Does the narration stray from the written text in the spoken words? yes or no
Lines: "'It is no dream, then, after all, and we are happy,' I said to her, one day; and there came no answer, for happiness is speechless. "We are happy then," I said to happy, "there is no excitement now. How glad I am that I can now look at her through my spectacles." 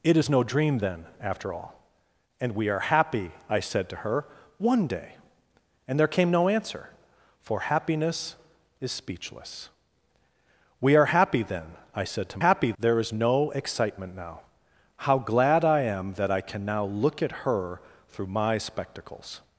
no